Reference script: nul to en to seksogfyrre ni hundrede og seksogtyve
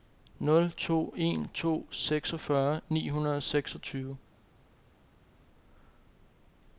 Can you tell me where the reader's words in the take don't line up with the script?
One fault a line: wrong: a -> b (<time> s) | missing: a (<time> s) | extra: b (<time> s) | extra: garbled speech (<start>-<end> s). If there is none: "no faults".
no faults